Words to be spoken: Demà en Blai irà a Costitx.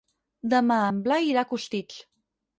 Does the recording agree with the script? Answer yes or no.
yes